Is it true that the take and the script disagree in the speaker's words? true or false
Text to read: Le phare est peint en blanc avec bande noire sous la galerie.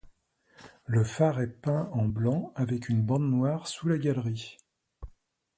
true